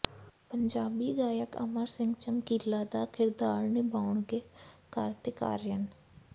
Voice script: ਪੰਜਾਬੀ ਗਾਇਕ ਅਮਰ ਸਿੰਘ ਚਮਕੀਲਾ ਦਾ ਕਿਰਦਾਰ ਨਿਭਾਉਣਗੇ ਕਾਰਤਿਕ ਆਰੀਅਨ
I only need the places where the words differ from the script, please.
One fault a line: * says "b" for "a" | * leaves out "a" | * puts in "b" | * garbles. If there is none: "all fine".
all fine